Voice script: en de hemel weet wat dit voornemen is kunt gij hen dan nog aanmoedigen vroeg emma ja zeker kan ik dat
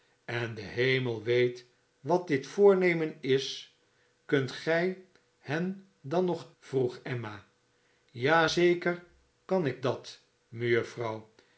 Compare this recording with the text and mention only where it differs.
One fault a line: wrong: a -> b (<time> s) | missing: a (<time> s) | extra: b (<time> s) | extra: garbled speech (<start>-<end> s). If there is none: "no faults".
missing: aanmoedigen (6.5 s)